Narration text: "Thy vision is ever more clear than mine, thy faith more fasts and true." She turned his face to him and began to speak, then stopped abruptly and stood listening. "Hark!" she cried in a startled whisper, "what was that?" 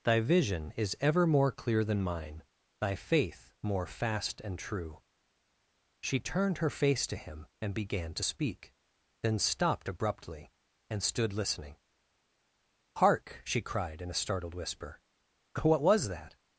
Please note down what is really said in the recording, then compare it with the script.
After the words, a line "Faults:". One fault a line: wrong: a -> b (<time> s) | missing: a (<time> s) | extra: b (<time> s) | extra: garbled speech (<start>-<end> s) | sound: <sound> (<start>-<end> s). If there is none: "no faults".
"Thy vision is ever more clear than mine, thy faith more fast and true." She turned her face to him and began to speak, then stopped abruptly and stood listening. "Hark!" she cried in a startled whisper, "what was that?"
Faults:
wrong: fasts -> fast (3.9 s)
wrong: his -> her (6.6 s)